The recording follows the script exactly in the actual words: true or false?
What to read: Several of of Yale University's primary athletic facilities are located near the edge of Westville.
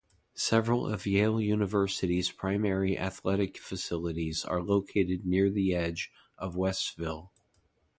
false